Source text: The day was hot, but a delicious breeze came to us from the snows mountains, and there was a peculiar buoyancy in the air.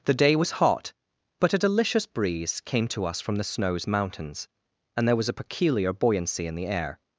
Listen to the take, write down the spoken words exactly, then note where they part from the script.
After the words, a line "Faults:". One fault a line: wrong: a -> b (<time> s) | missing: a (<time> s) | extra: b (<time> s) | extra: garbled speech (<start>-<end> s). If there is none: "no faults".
The day was hot, but a delicious breeze came to us from the snows mountains, and there was a peculiar buoyancy in the air.
Faults:
no faults